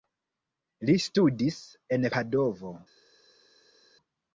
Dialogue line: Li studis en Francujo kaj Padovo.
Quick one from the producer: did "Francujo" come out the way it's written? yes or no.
no